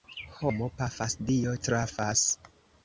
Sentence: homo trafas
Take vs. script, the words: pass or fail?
fail